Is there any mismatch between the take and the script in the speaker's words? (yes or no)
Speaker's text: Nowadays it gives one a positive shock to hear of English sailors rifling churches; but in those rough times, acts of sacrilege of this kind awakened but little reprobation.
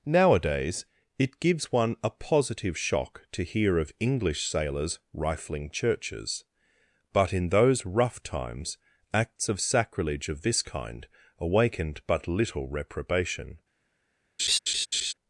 no